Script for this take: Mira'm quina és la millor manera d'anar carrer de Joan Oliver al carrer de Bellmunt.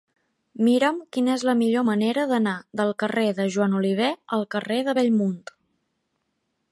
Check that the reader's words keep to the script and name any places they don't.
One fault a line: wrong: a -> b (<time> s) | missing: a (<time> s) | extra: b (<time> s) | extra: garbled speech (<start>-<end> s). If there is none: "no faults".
extra: del (2.8 s)